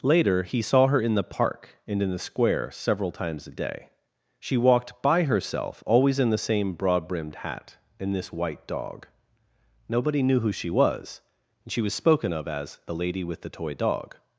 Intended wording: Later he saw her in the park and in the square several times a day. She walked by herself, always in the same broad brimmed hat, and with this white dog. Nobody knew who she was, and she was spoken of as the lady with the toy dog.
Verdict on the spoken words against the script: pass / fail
fail